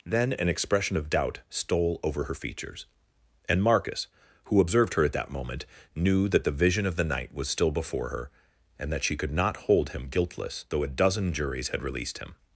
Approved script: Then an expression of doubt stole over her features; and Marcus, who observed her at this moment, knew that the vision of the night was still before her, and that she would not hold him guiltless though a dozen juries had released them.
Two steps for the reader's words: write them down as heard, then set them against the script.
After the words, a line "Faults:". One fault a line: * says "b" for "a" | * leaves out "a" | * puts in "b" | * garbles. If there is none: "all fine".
Then an expression of doubt stole over her features; and Marcus, who observed her at that moment, knew that the vision of the night was still before her, and that she could not hold him guiltless though a dozen juries had released him.
Faults:
* says "that" for "this"
* says "could" for "would"
* says "him" for "them"